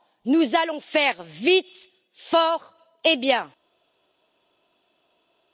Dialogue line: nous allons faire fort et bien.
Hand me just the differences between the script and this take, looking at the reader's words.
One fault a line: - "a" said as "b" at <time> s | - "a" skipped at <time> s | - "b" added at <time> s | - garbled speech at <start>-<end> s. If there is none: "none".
- "vite" added at 1.2 s